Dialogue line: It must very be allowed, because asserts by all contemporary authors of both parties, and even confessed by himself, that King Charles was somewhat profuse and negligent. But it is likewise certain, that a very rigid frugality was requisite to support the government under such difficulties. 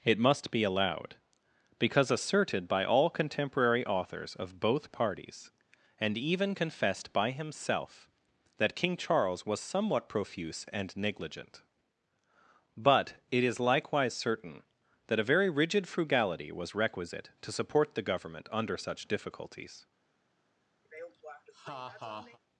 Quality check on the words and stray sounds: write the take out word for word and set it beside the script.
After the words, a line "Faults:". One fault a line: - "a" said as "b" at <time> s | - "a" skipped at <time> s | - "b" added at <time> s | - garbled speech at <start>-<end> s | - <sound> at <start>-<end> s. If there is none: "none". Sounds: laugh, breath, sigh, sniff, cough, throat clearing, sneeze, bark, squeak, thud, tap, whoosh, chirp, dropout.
It must be allowed, because asserted by all contemporary authors of both parties, and even confessed by himself, that King Charles was somewhat profuse and negligent. But it is likewise certain, that a very rigid frugality was requisite to support the government under such difficulties.
Faults:
- "very" skipped at 0.5 s
- "asserts" said as "asserted" at 2.1 s
- laugh at 20.8-22.4 s